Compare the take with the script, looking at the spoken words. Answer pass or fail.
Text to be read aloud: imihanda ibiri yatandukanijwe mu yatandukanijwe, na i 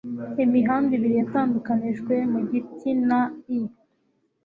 fail